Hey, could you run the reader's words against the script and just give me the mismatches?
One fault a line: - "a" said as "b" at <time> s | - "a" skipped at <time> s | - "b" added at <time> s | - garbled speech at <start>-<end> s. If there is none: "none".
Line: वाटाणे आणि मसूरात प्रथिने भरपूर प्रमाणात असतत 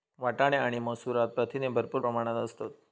none